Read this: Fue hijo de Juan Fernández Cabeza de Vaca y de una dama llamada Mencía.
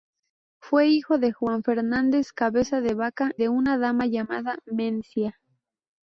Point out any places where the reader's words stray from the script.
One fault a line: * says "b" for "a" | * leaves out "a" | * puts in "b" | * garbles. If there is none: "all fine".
* leaves out "y"